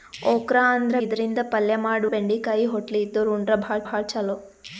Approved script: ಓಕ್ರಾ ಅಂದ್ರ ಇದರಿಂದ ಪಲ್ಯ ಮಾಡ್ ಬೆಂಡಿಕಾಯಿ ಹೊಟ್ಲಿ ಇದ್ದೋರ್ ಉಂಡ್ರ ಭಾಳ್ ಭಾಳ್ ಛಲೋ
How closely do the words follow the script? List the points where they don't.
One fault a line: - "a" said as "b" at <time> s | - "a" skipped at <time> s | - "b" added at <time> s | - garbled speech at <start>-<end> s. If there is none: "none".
none